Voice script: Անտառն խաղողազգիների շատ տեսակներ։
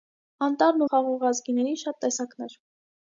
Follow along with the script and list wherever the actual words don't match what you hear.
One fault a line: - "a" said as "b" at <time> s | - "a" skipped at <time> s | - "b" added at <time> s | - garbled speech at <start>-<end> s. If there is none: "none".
none